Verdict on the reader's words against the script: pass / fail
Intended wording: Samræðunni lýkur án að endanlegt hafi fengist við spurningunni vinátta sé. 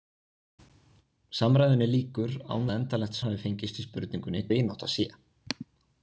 pass